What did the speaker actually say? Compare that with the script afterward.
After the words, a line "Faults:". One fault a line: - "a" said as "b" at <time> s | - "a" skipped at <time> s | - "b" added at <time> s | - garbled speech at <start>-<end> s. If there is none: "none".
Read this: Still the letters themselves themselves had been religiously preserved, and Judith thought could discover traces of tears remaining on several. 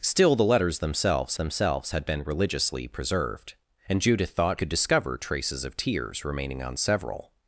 Still the letters themselves themselves had been religiously preserved, and Judith thought could discover traces of tears remaining on several.
Faults:
none